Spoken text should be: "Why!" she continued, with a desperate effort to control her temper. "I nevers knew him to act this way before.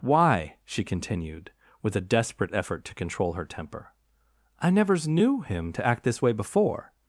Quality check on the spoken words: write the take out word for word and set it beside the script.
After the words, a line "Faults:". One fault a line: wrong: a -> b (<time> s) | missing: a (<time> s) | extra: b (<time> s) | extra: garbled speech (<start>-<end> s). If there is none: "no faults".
"Why!" she continued, with a desperate effort to control her temper. "I nevers knew him to act this way before.
Faults:
no faults